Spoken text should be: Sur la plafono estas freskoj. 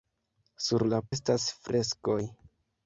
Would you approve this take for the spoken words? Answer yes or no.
no